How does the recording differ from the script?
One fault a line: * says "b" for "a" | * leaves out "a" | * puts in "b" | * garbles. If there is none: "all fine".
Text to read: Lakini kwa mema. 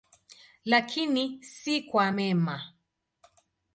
* puts in "si"